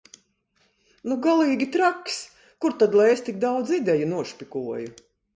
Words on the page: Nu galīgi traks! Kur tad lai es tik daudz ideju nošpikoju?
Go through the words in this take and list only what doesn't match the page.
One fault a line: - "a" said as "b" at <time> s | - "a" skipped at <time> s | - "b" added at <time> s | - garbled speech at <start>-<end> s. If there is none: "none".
none